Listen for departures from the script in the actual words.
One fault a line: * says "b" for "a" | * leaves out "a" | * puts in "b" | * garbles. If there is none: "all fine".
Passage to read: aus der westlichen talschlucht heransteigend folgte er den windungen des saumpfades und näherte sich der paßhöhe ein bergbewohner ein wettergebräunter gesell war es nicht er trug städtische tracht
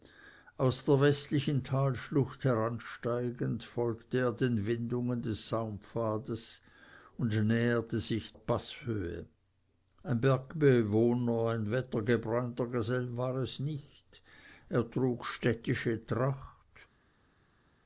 * leaves out "der"